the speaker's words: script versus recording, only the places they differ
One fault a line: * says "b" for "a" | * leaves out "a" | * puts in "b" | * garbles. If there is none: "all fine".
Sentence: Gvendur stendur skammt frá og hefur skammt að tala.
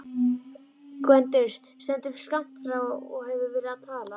* says "verið" for "skammt"